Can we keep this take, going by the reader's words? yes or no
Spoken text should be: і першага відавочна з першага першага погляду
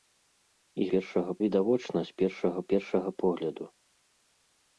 yes